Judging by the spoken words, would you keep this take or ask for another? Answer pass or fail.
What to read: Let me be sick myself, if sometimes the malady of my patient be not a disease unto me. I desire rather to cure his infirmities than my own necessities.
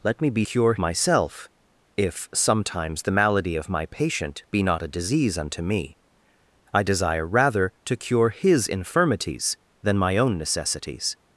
fail